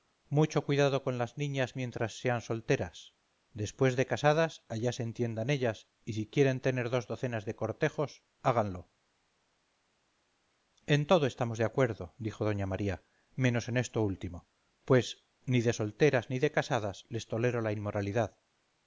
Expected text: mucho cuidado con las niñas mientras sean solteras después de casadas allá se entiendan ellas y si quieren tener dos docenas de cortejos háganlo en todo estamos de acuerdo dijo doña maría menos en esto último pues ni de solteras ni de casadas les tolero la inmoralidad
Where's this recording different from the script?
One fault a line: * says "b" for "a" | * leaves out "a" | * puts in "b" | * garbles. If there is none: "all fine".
all fine